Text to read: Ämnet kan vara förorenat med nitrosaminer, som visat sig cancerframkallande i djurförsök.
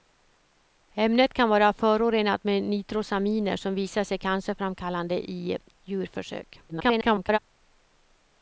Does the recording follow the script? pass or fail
fail